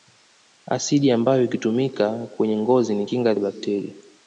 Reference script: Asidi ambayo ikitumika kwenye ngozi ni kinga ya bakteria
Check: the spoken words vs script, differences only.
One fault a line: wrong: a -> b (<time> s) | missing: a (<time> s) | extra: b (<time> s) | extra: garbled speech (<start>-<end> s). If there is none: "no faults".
no faults